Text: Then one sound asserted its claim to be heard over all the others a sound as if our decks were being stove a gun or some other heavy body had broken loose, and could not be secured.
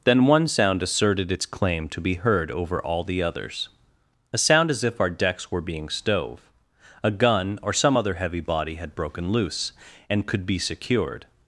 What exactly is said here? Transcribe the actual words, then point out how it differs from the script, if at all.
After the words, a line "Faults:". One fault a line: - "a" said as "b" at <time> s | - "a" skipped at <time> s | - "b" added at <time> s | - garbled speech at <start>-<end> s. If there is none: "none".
Then one sound asserted its claim to be heard over all the others a sound as if our decks were being stove a gun or some other heavy body had broken loose, and could be secured.
Faults:
- "not" skipped at 10.4 s